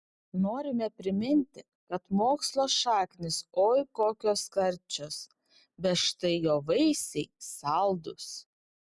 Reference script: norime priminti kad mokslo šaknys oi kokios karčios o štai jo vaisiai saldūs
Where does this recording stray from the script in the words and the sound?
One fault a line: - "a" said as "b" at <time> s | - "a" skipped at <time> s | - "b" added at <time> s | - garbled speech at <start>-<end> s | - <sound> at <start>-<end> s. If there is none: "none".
- "o" said as "bet" at 5.9 s